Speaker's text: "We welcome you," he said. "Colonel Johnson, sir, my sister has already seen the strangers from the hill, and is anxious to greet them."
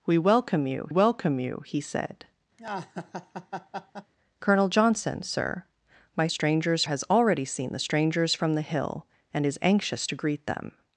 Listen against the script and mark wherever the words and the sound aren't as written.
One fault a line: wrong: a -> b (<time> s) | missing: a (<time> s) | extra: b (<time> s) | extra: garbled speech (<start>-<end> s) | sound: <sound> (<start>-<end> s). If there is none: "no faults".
extra: welcome you (0.9 s)
sound: laugh (2.6-4.1 s)
wrong: sister -> strangers (6.3 s)